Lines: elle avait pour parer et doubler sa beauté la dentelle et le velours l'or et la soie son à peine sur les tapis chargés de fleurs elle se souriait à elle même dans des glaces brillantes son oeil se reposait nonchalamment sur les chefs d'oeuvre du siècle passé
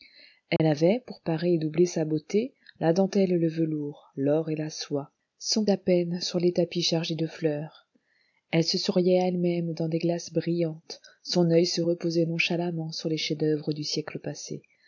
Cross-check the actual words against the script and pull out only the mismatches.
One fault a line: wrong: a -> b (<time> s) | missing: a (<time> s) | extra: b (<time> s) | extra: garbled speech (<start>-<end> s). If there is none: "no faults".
no faults